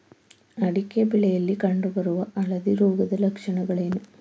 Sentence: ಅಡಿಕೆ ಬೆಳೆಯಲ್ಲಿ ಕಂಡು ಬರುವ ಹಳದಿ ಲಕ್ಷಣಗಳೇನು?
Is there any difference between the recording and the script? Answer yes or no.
yes